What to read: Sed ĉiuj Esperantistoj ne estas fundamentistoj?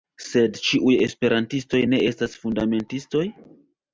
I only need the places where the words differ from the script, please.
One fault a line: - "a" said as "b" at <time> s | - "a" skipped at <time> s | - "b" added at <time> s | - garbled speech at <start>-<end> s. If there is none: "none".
none